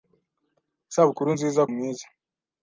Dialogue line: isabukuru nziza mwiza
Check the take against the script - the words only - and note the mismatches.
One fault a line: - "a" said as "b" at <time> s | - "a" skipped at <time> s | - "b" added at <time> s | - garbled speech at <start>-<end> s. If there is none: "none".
none